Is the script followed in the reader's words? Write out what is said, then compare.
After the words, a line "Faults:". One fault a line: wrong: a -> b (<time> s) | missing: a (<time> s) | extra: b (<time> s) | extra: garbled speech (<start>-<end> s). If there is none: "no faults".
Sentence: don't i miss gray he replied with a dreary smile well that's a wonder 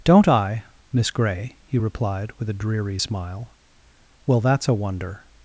don't i miss gray he replied with a dreary smile well that's a wonder
Faults:
no faults